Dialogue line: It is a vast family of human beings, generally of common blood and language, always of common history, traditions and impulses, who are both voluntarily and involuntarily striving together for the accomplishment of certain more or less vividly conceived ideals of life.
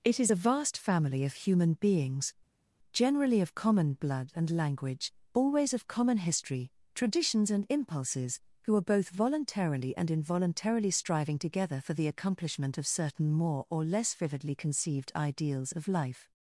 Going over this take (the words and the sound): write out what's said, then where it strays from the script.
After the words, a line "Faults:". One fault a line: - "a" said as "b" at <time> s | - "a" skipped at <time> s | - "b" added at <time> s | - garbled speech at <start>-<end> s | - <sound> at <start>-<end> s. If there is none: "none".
It is a vast family of human beings, generally of common blood and language, always of common history, traditions and impulses, who are both voluntarily and involuntarily striving together for the accomplishment of certain more or less vividly conceived ideals of life.
Faults:
none